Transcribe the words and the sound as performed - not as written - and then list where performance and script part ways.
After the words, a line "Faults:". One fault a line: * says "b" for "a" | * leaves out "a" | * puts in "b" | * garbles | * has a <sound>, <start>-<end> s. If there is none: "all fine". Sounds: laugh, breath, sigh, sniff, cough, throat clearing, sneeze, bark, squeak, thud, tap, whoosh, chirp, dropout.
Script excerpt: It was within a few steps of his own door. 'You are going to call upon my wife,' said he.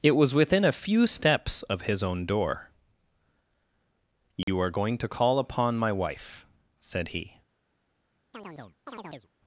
It was within a few steps of his own door. 'You are going to call upon my wife,' said he.
Faults:
* has a dropout, 4.4-4.5 s
* has a chirp, 8.3-9.3 s